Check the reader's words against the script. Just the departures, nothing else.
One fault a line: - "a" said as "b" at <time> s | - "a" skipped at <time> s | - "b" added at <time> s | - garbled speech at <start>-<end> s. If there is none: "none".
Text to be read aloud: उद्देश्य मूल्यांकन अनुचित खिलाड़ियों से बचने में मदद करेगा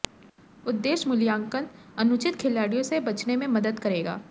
none